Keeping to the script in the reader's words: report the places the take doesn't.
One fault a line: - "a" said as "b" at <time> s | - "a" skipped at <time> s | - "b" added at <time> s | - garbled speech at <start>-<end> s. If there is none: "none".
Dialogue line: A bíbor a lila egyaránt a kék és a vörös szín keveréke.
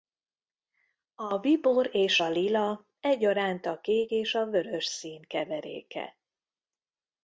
- "és" added at 1.9 s